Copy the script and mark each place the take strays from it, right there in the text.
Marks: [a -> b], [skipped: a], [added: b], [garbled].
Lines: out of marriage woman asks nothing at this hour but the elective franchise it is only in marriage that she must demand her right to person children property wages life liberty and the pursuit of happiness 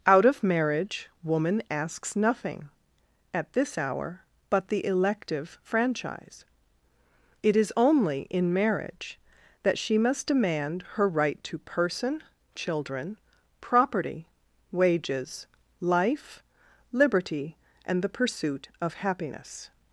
out of marriage woman asks nothing at this hour but the elective franchise it is only in marriage that she must demand her right to person children property wages life liberty and the pursuit of happiness